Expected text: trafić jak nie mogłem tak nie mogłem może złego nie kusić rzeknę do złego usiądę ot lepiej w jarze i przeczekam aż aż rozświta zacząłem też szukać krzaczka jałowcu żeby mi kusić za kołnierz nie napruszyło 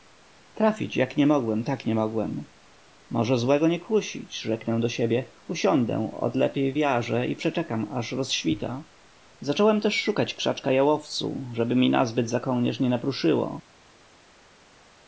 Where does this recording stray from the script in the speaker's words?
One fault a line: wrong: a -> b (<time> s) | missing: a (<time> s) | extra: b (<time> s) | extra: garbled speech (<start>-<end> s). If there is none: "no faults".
wrong: złego -> siebie (4.9 s)
missing: aż (8.1 s)
wrong: kusić -> nazbyt (11.9 s)